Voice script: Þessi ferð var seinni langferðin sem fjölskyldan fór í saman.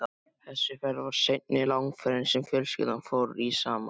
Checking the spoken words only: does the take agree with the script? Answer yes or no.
yes